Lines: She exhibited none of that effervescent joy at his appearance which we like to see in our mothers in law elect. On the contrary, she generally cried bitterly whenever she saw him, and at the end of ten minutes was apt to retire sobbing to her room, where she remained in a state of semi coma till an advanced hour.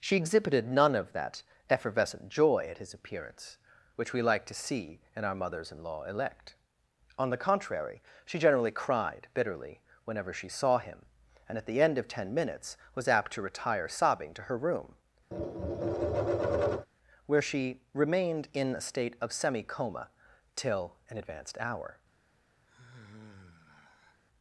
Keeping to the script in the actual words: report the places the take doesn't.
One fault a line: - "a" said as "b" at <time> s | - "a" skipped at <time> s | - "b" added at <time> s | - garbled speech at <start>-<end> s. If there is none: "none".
none